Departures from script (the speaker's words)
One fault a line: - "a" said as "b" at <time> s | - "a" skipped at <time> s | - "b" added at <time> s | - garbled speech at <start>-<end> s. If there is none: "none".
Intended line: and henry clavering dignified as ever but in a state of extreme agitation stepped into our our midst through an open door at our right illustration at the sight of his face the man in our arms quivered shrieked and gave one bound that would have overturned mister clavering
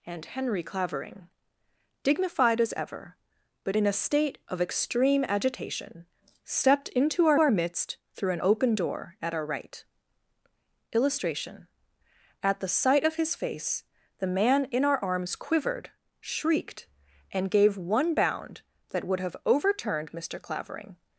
none